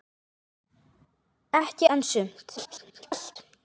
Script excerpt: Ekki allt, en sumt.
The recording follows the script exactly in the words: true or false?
false